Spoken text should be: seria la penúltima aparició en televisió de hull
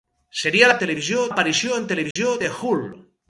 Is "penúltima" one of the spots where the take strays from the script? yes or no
yes